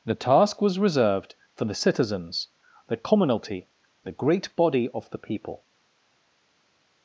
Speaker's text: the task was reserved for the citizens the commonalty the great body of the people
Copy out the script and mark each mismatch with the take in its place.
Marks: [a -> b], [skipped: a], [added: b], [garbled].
the task was reserved for the citizens the commonalty the great body of the people